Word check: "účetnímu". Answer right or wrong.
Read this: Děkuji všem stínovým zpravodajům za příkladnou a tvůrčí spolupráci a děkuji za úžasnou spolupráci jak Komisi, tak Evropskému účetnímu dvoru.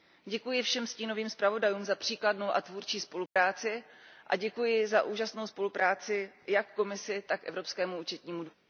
right